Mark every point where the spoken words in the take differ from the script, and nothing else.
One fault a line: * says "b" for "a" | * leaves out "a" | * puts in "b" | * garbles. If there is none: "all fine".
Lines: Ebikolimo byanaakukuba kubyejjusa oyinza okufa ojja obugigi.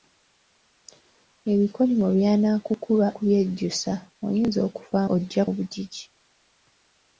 all fine